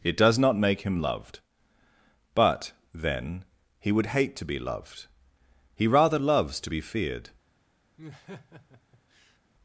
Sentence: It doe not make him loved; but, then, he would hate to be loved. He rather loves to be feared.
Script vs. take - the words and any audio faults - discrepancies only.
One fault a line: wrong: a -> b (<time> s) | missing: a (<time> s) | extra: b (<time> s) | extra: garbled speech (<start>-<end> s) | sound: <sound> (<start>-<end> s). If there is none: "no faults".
wrong: doe -> does (0.2 s)
sound: laugh (8.0-9.4 s)